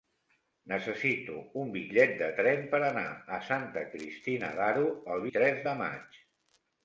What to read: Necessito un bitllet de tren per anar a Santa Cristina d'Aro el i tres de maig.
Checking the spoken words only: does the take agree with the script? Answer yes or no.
yes